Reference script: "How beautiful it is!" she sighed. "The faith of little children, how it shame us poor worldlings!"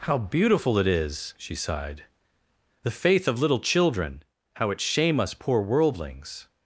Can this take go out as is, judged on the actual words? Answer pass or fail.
pass